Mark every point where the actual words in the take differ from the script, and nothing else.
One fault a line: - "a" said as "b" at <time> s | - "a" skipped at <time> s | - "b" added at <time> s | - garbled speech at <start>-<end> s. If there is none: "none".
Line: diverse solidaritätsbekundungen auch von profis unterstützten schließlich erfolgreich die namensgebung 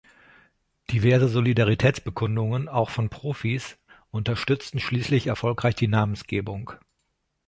none